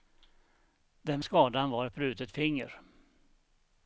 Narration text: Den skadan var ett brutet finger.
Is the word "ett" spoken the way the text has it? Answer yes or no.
yes